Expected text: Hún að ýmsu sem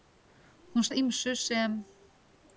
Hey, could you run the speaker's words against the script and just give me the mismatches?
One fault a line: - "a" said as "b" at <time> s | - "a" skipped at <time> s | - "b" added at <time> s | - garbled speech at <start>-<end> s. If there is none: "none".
none